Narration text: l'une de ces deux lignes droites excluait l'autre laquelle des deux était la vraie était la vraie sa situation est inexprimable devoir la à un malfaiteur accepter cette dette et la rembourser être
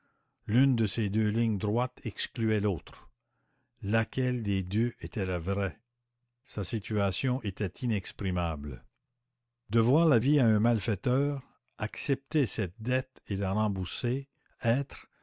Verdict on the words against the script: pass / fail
fail